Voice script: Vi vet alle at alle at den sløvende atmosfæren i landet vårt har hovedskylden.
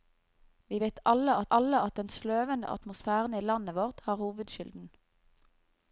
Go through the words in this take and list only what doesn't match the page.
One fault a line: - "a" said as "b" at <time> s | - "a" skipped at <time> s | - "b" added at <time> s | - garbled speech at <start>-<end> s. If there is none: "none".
none